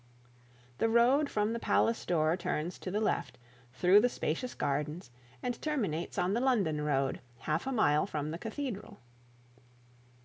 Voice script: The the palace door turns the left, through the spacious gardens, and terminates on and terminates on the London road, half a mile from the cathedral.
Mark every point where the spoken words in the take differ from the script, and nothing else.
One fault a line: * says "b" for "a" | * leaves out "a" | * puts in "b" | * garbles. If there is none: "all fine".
* puts in "road from"
* puts in "to"
* leaves out "and terminates on"